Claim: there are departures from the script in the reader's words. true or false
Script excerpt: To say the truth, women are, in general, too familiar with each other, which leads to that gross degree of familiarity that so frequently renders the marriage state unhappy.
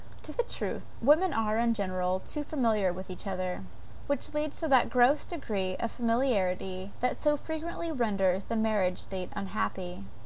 true